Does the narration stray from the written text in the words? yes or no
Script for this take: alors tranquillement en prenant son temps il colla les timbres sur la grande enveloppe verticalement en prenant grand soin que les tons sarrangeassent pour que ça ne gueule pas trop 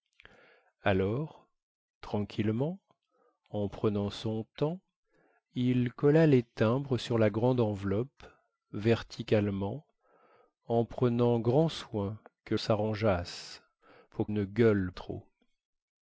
yes